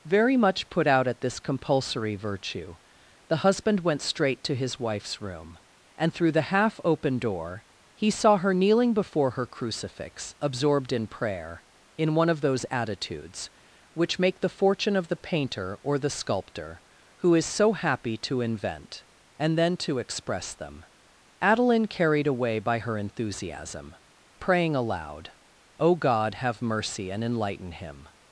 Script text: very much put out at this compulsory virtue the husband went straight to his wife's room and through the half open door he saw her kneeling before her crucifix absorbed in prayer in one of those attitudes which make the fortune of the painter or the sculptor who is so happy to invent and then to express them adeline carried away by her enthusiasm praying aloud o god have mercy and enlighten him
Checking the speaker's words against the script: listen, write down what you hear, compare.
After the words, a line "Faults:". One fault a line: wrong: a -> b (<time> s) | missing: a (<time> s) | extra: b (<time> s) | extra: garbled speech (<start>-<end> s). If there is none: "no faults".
very much put out at this compulsory virtue the husband went straight to his wife's room and through the half open door he saw her kneeling before her crucifix absorbed in prayer in one of those attitudes which make the fortune of the painter or the sculptor who is so happy to invent and then to express them adeline carried away by her enthusiasm praying aloud o god have mercy and enlighten him
Faults:
no faults